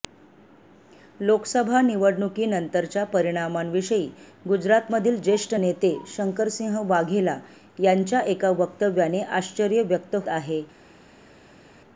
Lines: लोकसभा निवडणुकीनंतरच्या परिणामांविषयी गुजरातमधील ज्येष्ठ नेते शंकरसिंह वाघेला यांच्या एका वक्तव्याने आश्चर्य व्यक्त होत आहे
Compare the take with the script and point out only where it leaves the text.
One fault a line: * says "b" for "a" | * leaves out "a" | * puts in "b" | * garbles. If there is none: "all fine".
* leaves out "होत"